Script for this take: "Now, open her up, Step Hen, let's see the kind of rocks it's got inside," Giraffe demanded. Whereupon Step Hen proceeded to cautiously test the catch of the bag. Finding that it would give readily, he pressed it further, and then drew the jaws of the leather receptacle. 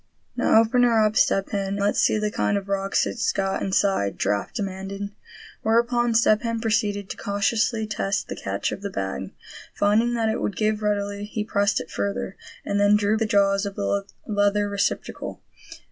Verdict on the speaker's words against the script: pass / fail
pass